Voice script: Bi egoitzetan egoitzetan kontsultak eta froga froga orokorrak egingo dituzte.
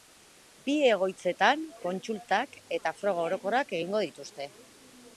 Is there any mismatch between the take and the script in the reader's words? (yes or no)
yes